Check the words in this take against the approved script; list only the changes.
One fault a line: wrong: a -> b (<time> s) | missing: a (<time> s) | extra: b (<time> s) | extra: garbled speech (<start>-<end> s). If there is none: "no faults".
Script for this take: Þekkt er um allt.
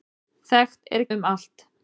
no faults